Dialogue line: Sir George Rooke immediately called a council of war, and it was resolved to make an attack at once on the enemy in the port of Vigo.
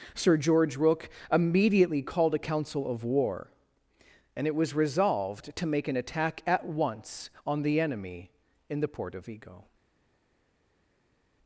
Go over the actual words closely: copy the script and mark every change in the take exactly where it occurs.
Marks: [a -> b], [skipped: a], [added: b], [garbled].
Sir George Rooke immediately called a council of war, and it was resolved to make an attack at once on the enemy in the port of Vigo.